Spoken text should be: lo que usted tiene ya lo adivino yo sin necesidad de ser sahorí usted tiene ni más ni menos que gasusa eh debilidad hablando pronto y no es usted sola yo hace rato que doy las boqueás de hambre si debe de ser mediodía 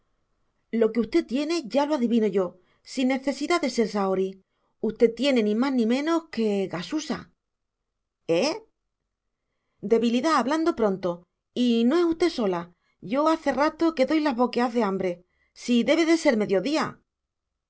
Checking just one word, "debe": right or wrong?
right